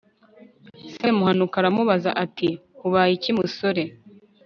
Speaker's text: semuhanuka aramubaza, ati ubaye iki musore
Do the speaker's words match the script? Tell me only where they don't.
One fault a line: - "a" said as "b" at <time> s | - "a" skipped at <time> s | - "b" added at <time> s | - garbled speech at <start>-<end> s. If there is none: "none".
none